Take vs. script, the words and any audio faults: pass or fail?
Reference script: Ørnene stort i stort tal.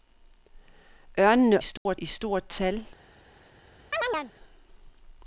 fail